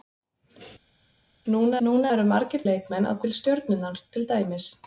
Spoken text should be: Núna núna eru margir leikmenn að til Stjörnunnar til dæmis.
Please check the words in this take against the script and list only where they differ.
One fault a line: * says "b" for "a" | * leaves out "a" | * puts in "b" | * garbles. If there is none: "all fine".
all fine